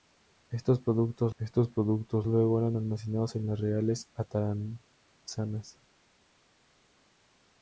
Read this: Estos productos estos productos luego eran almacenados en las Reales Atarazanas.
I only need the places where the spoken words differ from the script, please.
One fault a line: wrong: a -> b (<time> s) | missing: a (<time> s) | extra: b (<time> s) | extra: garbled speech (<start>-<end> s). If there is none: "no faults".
no faults